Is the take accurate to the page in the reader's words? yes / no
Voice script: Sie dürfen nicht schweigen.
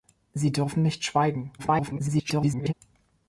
no